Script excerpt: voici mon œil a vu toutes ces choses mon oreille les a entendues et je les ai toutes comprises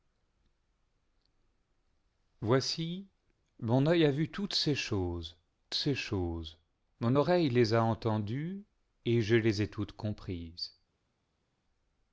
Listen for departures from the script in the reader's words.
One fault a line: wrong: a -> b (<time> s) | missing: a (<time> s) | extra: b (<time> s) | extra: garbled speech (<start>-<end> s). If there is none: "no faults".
extra: ces choses (5.7 s)